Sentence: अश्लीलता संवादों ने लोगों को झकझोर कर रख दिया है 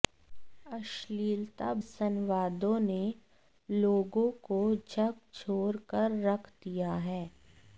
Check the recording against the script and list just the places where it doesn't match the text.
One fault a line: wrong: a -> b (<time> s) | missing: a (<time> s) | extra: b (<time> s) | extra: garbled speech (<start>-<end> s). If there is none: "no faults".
no faults